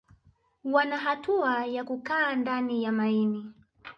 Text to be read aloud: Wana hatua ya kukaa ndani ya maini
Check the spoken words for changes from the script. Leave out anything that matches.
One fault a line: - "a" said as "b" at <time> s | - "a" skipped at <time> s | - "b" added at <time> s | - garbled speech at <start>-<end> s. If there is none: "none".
none